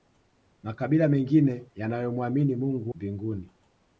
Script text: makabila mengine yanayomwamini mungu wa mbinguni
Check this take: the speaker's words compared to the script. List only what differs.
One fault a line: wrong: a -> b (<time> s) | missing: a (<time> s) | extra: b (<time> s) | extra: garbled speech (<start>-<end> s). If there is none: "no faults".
missing: wa (2.9 s)